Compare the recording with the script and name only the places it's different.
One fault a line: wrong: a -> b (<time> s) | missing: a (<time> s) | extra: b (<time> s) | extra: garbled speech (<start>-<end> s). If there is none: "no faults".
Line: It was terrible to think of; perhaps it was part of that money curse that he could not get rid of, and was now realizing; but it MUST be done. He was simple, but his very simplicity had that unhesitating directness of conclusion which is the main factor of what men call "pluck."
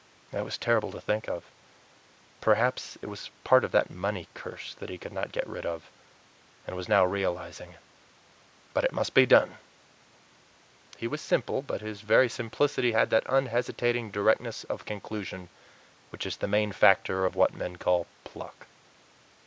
no faults